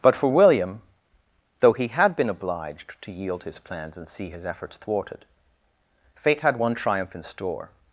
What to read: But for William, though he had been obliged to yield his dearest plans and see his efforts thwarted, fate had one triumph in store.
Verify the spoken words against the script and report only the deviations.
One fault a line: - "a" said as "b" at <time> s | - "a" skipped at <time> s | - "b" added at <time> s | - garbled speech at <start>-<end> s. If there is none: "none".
- "dearest" skipped at 3.6 s